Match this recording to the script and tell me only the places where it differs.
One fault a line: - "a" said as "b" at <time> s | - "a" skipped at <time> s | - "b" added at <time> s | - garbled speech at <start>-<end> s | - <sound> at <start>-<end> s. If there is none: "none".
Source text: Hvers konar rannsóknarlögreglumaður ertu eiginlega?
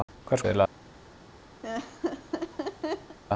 - "konar rannsóknarlögreglumaður ertu" skipped at 0.4 s
- laugh at 1.6-3.2 s